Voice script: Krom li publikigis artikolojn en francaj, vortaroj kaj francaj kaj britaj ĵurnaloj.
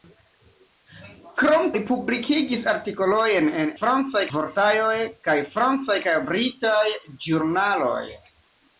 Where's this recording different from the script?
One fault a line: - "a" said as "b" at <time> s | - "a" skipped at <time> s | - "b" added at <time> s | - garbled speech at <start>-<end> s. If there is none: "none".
none